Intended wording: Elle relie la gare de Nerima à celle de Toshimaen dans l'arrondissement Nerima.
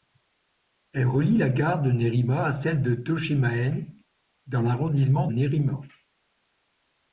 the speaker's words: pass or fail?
pass